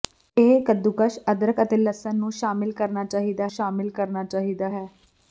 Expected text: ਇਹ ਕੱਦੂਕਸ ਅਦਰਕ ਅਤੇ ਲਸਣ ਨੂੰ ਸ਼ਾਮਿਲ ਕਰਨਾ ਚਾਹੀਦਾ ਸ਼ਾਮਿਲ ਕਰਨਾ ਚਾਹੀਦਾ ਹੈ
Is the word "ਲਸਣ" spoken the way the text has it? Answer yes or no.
yes